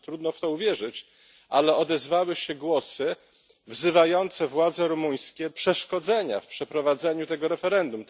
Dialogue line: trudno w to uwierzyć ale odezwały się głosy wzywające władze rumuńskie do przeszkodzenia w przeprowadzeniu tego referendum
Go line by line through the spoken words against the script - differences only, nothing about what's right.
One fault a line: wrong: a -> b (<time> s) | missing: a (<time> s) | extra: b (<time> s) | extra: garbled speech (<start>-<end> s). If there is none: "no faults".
missing: do (5.5 s)